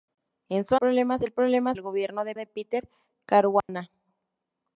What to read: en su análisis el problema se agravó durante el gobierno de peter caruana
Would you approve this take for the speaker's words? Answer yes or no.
no